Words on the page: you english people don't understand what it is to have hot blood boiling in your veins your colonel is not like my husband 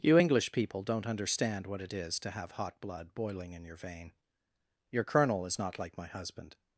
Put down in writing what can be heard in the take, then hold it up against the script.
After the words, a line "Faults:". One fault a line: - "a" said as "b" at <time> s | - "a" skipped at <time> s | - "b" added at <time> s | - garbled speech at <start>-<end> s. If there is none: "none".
you english people don't understand what it is to have hot blood boiling in your vein your colonel is not like my husband
Faults:
- "veins" said as "vein" at 3.7 s